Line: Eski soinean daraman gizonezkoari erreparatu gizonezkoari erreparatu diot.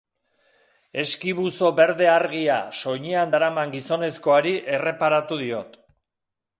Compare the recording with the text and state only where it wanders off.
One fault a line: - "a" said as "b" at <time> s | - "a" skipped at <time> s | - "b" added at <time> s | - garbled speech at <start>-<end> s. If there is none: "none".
- "buzo berde argia" added at 1.4 s
- "gizonezkoari erreparatu" skipped at 5.4 s